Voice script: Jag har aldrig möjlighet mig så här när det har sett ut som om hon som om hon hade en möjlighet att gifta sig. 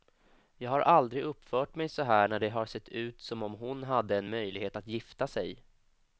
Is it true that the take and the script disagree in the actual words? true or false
true